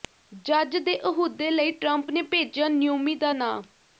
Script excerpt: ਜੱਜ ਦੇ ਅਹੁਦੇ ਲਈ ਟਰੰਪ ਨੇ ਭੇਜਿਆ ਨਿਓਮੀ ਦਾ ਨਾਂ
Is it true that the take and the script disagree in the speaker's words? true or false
false